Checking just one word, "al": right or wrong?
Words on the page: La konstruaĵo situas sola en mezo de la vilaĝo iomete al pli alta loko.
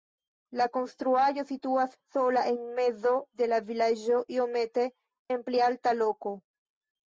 wrong